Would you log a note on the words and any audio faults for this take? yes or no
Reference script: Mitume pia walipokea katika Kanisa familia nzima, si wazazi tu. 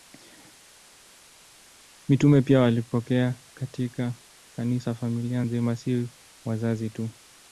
no